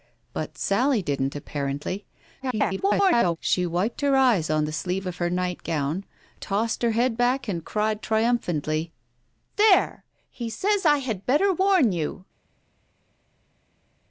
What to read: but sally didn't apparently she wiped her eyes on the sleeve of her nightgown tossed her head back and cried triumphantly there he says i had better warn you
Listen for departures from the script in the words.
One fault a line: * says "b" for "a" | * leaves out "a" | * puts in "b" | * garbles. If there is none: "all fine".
* garbles